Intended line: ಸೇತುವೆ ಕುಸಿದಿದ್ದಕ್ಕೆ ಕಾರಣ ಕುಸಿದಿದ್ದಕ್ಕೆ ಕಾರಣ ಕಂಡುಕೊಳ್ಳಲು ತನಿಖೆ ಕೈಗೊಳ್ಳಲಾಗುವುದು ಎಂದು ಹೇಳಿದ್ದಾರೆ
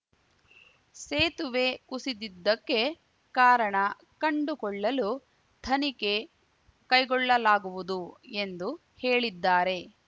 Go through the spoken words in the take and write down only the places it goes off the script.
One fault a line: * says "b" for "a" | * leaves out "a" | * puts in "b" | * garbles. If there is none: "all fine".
* leaves out "ಕುಸಿದಿದ್ದಕ್ಕೆ ಕಾರಣ"